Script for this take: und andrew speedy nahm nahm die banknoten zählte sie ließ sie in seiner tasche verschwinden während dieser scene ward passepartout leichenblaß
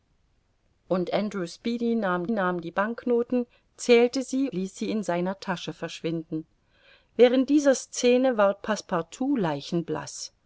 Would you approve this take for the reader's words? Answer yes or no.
yes